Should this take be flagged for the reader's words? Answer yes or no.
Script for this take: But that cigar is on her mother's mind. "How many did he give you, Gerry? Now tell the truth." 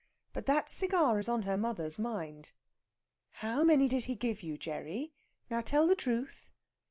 no